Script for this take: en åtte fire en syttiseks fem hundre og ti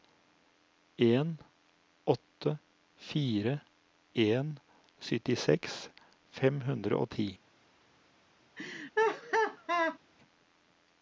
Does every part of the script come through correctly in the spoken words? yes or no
yes